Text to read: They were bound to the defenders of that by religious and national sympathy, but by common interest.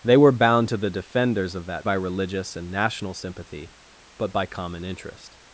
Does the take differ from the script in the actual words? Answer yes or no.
no